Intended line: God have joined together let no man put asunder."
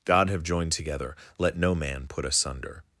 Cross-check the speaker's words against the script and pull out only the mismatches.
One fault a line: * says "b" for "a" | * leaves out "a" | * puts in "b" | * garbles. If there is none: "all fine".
all fine